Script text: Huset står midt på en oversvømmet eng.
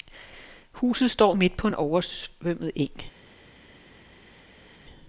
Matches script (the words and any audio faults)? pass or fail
pass